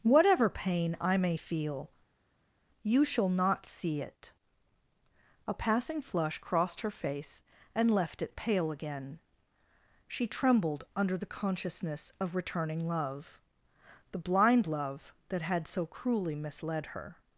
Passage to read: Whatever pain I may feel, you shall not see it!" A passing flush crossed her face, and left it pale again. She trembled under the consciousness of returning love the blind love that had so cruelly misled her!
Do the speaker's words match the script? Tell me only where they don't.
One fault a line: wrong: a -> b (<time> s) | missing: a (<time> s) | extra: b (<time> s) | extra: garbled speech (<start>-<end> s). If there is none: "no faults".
no faults